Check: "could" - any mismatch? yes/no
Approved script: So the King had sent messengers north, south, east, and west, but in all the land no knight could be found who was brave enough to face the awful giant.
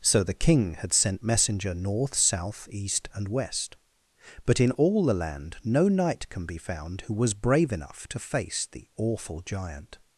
yes